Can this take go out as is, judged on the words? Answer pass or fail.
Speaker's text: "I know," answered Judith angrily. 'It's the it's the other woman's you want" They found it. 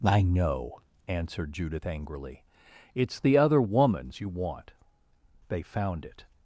fail